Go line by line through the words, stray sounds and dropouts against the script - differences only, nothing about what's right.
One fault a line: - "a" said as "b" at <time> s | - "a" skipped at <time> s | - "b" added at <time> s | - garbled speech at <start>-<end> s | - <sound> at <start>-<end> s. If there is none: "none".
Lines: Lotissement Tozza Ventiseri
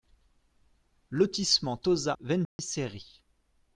- dropout at 2.4-2.6 s